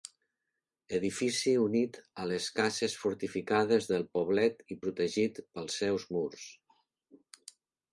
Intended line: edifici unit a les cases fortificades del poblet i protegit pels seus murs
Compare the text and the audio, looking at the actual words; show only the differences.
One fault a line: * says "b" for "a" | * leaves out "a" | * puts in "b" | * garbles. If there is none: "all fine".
all fine